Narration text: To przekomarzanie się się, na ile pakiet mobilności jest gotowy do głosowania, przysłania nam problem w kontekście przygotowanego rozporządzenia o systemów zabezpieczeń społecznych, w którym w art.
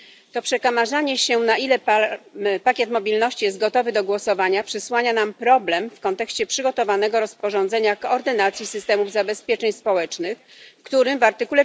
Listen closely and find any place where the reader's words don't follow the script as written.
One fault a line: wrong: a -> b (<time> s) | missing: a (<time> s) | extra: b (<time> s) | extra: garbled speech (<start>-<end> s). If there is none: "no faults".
missing: się (1.4 s)
extra: koordynacji (8.0 s)